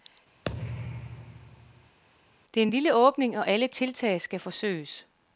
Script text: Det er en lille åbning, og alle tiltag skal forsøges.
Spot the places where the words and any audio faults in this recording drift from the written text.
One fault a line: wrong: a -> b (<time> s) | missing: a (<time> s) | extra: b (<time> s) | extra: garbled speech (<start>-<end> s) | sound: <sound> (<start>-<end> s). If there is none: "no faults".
sound: thud (0.4-2.0 s)